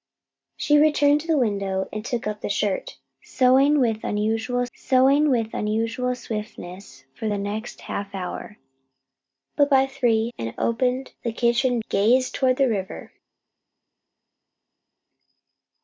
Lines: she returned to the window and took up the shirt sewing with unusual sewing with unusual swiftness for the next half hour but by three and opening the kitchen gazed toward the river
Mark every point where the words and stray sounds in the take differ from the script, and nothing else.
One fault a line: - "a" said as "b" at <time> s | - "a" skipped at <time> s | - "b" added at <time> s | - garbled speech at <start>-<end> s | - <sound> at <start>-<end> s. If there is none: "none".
none